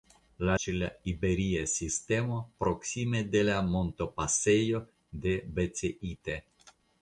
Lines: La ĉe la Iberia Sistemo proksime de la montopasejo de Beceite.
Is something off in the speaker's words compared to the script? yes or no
no